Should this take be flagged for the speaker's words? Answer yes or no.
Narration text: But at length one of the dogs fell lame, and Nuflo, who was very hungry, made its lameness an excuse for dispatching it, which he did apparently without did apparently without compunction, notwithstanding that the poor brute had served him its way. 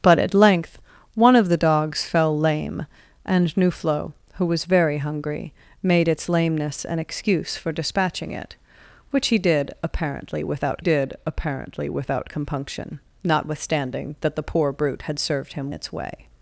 no